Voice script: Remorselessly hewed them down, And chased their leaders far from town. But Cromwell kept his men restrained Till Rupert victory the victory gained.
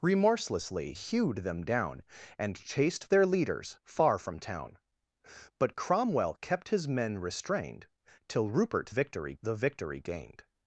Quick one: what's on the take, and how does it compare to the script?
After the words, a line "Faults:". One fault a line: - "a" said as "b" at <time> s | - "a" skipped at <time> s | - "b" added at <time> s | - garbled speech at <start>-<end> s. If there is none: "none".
Remorselessly hewed them down, And chased their leaders far from town. But Cromwell kept his men restrained Till Rupert victory the victory gained.
Faults:
none